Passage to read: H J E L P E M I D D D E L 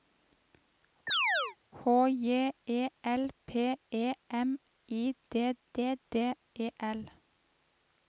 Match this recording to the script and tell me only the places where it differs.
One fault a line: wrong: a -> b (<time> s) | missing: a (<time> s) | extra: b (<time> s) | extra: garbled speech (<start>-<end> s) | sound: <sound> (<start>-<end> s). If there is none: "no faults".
sound: chirp (1.1-1.6 s)